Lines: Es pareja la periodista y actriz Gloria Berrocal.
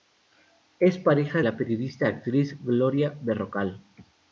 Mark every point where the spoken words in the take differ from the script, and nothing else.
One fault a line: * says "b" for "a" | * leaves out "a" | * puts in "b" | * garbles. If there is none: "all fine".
all fine